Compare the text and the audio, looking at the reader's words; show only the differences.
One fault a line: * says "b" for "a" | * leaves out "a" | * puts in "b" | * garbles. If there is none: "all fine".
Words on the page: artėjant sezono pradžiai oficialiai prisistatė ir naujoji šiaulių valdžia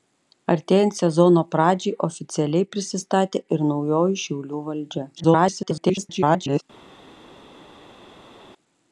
* garbles